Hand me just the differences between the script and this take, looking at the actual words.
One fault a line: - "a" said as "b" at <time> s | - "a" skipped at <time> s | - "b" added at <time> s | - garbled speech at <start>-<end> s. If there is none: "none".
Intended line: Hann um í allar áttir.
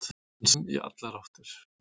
none